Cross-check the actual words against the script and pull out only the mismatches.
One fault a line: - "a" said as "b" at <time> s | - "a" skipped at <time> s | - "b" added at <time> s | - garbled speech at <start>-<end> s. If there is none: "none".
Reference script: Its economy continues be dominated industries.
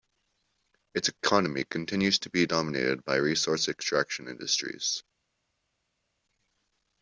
- "to" added at 2.2 s
- "by resource extraction" added at 3.0 s